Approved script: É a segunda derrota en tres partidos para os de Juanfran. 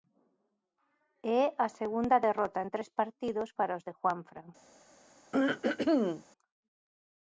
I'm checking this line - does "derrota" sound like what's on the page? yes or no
yes